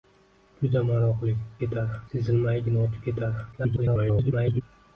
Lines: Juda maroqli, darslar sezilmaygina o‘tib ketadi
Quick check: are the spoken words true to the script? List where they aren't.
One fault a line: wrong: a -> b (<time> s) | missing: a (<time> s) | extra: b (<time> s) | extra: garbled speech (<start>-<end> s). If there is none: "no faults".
wrong: darslar -> ketadi (1.6 s)
extra: garbled speech (3.5-4.6 s)